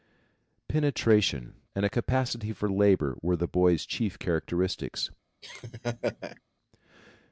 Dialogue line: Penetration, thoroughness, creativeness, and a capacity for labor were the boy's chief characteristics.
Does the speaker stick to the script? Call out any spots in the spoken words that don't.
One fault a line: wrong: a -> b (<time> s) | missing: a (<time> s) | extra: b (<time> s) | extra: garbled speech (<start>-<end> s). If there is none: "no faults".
missing: thoroughness creativeness (1.6 s)